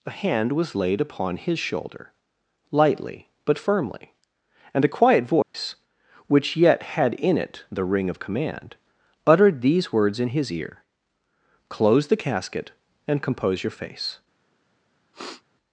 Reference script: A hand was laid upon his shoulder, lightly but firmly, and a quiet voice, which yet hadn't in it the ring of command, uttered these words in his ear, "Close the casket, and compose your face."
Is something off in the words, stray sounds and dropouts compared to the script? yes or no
yes